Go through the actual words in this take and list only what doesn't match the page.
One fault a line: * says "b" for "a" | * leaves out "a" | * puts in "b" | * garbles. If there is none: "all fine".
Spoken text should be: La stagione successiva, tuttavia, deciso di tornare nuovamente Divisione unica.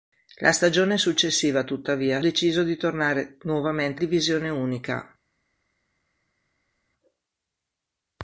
all fine